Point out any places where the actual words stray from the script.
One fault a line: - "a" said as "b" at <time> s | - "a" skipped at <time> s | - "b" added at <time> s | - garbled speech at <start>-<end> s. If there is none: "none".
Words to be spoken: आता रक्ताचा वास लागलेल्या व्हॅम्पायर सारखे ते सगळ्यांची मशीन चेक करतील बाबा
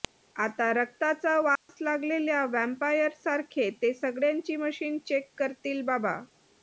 none